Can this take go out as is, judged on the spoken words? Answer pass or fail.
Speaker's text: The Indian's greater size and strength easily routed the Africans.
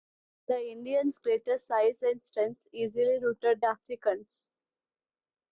fail